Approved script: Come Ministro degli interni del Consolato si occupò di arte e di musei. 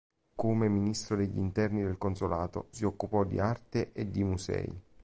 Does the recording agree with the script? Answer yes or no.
yes